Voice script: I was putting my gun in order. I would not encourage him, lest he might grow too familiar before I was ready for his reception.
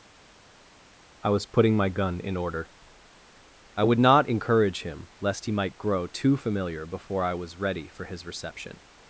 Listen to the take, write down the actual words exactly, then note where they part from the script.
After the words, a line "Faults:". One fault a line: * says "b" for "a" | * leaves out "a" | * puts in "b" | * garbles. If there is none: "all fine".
I was putting my gun in order. I would not encourage him, lest he might grow too familiar before I was ready for his reception.
Faults:
all fine